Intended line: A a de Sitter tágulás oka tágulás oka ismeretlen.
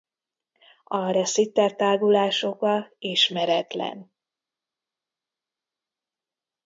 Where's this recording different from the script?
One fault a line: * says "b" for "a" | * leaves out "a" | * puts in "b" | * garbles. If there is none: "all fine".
* leaves out "a"
* leaves out "tágulás oka"